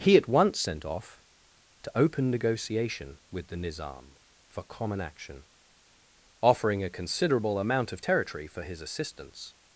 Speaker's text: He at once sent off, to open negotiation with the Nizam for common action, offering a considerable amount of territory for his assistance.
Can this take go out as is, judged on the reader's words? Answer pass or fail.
pass